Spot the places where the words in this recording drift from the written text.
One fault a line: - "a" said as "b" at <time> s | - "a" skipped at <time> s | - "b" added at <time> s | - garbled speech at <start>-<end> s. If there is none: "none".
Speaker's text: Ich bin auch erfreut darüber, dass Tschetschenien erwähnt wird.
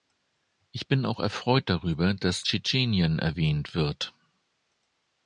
none